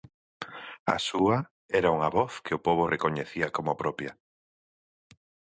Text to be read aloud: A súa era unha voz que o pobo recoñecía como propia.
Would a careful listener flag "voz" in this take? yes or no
no